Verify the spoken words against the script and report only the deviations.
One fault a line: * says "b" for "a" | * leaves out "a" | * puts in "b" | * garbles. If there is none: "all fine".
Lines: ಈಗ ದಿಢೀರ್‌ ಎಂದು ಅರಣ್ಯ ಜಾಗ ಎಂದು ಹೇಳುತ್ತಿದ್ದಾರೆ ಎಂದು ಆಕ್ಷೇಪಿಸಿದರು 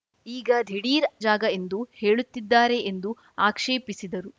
* leaves out "ಎಂದು ಅರಣ್ಯ"